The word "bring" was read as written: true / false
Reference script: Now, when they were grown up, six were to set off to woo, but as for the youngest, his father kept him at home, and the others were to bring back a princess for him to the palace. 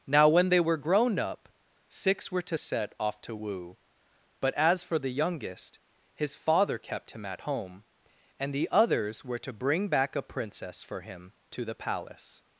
true